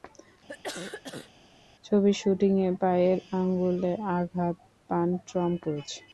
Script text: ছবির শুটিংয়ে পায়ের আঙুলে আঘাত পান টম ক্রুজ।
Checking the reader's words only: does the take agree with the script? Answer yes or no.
yes